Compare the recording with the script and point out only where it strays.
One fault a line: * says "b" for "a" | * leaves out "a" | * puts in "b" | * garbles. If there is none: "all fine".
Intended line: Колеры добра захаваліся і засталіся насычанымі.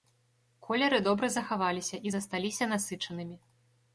all fine